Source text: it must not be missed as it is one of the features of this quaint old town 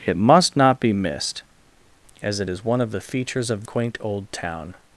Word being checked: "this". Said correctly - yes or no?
no